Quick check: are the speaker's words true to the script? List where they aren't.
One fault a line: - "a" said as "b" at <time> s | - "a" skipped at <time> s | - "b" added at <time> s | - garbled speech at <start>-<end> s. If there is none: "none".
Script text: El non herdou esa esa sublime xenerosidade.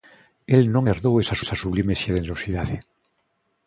none